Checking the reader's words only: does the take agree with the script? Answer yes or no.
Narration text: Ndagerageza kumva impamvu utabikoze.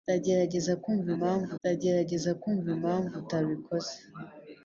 no